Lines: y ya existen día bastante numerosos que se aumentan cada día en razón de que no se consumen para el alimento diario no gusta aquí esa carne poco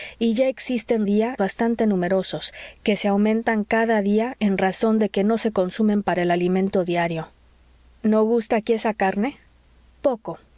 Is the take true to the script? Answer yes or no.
yes